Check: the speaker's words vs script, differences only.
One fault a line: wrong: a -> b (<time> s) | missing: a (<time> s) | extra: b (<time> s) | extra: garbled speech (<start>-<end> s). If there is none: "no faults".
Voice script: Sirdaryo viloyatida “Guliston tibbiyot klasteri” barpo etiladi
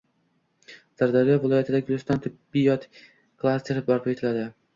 no faults